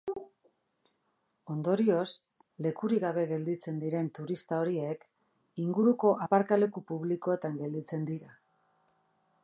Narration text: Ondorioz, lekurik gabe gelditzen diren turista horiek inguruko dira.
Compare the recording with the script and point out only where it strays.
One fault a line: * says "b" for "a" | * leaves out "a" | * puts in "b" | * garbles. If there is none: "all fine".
* puts in "aparkaleku publikoetan gelditzen"